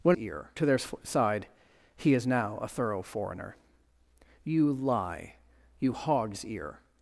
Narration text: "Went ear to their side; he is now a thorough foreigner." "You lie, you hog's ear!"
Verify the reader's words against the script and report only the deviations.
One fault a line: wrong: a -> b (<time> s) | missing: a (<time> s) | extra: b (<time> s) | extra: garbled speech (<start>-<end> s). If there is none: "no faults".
no faults